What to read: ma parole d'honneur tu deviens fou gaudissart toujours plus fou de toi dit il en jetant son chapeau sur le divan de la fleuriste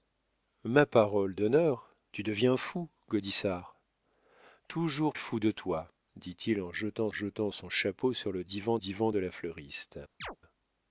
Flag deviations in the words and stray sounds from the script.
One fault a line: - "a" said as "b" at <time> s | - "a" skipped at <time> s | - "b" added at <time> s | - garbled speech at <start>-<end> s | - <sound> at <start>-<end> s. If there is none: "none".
- "plus" skipped at 5.1 s
- "jetant" added at 7.1 s
- "divan" added at 8.8 s
- chirp at 10.2-10.4 s